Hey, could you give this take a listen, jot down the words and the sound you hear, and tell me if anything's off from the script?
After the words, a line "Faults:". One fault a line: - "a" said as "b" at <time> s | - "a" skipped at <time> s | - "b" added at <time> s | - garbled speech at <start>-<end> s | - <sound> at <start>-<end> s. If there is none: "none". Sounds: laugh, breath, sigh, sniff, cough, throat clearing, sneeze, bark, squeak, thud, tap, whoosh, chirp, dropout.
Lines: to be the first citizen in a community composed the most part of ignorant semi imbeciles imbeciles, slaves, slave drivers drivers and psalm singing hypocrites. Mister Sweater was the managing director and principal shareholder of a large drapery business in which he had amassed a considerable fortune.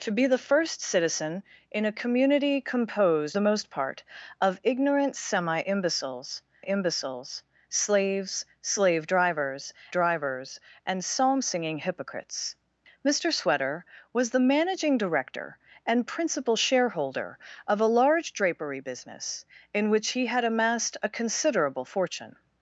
to be the first citizen in a community composed the most part of ignorant semi imbeciles imbeciles, slaves, slave drivers drivers and psalm singing hypocrites. Mister Sweater was the managing director and principal shareholder of a large drapery business in which he had amassed a considerable fortune.
Faults:
none